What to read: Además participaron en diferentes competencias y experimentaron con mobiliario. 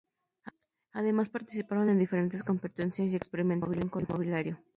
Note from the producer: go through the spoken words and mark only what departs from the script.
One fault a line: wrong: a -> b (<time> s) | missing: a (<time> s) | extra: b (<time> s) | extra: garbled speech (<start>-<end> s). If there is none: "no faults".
no faults